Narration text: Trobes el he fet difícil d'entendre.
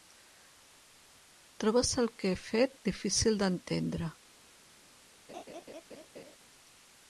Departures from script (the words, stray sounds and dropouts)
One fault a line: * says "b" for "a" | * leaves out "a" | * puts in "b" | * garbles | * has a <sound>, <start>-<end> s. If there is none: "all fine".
* puts in "que"
* has a laugh, 5.3-6.4 s